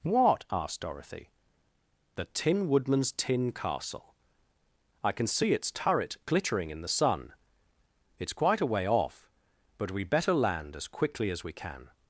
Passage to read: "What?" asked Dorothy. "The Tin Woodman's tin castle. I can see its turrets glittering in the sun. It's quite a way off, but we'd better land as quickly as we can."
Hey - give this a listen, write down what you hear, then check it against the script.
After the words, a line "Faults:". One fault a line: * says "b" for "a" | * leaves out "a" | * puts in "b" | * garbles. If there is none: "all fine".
"What?" asked Dorothy. "The Tin Woodman's tin castle. I can see its turret glittering in the sun. It's quite a way off, but we'd better land as quickly as we can."
Faults:
* says "turret" for "turrets"